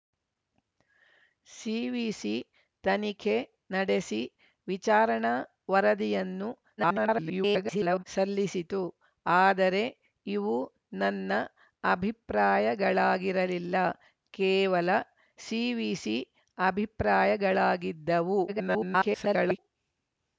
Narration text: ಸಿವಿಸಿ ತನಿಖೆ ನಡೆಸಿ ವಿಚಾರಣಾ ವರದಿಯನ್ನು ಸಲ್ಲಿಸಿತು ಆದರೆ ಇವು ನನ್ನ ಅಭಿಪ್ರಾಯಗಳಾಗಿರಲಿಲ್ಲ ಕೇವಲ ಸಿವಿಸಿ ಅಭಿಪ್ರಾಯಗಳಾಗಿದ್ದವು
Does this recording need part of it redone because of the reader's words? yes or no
yes